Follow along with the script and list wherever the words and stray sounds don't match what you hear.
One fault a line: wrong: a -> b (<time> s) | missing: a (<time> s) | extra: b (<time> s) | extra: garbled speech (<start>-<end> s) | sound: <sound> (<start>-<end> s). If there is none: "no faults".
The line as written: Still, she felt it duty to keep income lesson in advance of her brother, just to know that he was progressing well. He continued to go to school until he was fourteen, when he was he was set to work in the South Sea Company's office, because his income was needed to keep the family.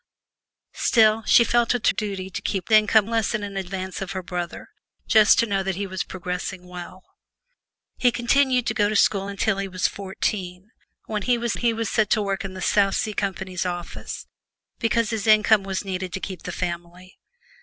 no faults